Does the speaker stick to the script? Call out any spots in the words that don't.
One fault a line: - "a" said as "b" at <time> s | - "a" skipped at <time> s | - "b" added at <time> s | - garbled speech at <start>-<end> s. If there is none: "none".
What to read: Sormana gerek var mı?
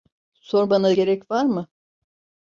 none